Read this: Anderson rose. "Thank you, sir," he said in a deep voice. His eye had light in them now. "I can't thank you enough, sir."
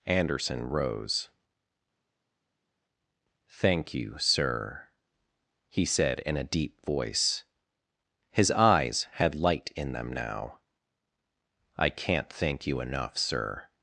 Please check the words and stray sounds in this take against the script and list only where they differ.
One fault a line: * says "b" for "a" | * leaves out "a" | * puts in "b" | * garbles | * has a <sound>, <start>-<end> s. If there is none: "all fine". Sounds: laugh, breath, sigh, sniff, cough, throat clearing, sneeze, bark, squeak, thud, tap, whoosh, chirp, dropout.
* says "eyes" for "eye"